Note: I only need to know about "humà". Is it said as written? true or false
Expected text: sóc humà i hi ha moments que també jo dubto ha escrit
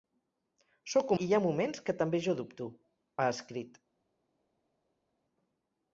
false